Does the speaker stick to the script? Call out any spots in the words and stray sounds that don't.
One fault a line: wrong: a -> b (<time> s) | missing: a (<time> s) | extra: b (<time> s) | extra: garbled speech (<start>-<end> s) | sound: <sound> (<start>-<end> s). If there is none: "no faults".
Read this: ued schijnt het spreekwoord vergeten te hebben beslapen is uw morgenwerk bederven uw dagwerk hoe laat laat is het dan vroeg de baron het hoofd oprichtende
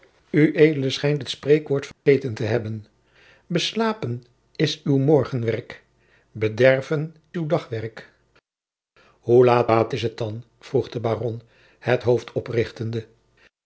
sound: dropout (1.9-2.1 s)